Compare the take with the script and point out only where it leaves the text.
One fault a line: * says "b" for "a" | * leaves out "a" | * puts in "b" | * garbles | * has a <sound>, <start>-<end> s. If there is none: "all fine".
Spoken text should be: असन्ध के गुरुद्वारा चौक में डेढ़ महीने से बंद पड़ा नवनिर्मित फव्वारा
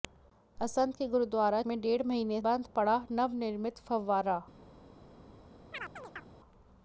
* leaves out "चौक"
* leaves out "से"
* has a chirp, 5.7-6.3 s